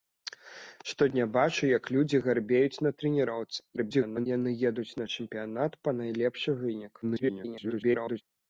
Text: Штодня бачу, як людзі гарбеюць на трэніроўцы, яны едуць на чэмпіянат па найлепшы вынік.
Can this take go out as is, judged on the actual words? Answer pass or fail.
fail